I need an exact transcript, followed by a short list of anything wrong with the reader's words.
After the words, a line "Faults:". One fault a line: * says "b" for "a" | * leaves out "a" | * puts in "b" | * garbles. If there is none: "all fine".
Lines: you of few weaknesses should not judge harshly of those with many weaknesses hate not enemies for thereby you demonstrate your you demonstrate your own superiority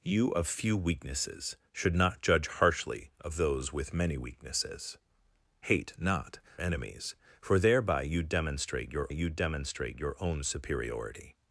you of few weaknesses should not judge harshly of those with many weaknesses hate not enemies for thereby you demonstrate your you demonstrate your own superiority
Faults:
all fine